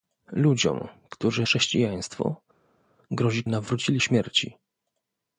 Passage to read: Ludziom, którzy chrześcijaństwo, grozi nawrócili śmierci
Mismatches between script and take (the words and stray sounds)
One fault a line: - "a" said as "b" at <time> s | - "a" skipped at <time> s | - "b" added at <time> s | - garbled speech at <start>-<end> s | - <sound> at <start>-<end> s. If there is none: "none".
none